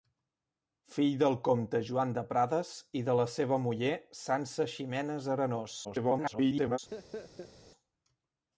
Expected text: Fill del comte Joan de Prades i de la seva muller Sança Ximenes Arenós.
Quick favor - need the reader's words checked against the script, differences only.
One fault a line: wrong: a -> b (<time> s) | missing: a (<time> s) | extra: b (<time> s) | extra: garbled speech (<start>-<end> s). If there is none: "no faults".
extra: garbled speech (5.8-6.8 s)